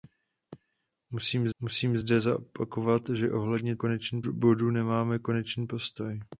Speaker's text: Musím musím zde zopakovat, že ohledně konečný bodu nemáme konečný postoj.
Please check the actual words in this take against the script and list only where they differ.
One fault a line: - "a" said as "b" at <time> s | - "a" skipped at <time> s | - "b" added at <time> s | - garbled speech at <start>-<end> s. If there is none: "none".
none